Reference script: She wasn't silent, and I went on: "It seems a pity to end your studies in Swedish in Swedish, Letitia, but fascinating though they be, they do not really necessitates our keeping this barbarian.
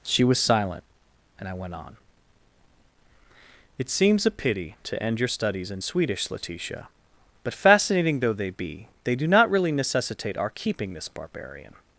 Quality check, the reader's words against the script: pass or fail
fail